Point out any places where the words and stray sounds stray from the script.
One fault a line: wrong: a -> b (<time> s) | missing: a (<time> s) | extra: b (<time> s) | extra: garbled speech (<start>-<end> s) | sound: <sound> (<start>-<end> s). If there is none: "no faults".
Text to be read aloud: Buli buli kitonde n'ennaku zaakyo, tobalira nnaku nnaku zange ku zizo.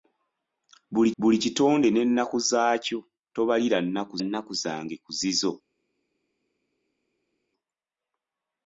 no faults